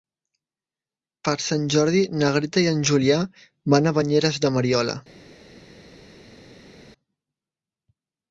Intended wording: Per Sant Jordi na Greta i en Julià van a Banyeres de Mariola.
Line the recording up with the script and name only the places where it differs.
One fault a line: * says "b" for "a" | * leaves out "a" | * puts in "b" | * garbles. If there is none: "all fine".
all fine